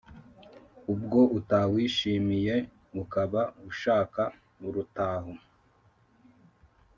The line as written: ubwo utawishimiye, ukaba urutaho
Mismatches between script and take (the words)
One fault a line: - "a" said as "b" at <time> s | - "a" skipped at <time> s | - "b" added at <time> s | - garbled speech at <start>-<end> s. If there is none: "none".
- "ushaka" added at 3.7 s